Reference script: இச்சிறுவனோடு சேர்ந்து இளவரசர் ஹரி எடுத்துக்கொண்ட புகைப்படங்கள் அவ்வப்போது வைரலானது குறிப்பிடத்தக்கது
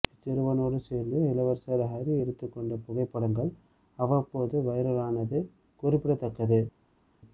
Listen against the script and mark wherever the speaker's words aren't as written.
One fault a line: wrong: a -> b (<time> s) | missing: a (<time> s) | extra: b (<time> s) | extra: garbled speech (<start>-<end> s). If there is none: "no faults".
no faults